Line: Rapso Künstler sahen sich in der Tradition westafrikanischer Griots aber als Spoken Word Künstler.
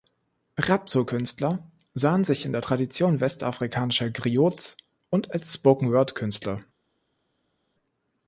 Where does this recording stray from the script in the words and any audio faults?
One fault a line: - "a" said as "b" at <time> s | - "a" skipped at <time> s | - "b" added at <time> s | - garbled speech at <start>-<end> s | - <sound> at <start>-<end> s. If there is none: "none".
- "aber" said as "und" at 5.1 s